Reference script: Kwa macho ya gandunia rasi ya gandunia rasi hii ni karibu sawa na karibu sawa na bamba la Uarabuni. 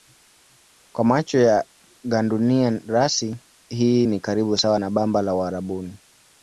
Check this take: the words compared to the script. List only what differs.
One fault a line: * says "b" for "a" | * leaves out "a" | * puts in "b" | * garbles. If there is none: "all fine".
* leaves out "ya gandunia rasi"
* leaves out "karibu sawa na"